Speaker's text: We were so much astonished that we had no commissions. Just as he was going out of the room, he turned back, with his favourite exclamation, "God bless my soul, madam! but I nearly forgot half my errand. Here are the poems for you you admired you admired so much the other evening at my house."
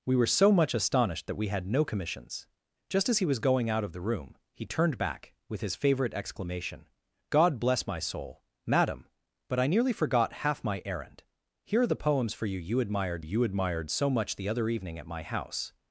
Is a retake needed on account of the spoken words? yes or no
no